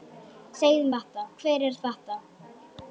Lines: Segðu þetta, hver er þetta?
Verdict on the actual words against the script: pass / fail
pass